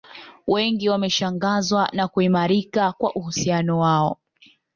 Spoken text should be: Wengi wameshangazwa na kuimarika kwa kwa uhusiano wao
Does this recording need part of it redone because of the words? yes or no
yes